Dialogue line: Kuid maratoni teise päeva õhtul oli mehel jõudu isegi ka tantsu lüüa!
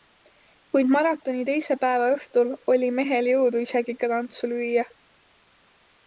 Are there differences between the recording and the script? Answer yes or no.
no